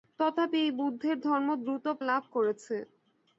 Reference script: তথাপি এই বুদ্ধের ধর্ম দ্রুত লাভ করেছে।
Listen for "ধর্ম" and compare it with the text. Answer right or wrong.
right